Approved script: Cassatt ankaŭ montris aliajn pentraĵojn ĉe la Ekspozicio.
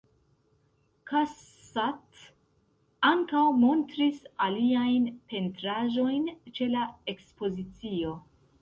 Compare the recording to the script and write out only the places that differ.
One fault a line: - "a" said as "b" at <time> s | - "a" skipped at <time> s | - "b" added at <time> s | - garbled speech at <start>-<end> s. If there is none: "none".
none